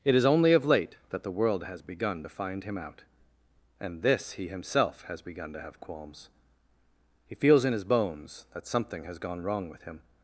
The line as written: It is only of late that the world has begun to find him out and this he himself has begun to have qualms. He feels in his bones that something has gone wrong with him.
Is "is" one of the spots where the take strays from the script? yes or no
no